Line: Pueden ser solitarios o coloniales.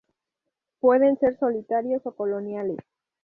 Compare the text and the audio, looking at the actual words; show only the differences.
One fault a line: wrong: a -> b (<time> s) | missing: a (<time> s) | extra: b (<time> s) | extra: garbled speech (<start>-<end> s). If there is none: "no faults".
no faults